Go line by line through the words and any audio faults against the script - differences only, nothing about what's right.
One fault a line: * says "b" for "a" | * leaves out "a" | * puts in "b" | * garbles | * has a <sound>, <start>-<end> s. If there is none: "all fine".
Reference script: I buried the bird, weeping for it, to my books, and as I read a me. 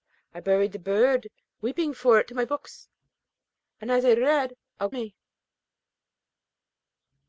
all fine